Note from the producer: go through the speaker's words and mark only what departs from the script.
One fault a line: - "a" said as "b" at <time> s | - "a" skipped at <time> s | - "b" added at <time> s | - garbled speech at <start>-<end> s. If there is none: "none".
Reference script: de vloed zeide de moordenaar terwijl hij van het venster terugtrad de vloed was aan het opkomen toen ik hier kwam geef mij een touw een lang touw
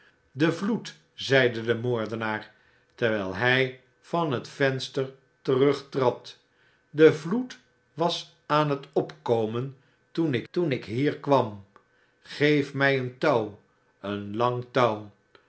- "toen ik" added at 10.5 s